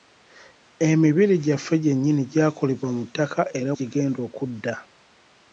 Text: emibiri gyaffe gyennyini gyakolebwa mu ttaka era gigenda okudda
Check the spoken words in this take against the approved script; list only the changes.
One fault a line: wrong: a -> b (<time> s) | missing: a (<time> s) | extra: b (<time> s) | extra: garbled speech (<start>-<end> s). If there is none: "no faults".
no faults